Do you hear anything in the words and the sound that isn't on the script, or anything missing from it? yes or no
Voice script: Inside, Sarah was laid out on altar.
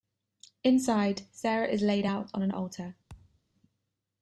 yes